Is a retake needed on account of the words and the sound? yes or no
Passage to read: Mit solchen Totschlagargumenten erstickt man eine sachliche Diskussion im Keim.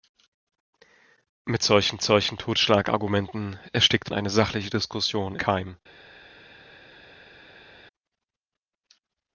yes